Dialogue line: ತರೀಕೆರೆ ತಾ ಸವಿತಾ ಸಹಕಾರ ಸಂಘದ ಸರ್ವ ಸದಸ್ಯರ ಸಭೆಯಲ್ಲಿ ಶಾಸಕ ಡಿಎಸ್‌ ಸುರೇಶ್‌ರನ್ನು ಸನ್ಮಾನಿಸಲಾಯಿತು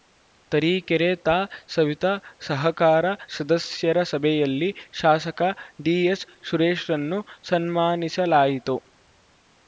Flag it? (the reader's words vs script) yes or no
yes